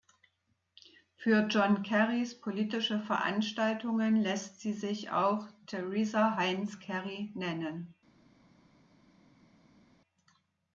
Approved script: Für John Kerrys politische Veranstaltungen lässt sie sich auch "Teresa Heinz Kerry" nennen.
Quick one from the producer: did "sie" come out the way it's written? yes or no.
yes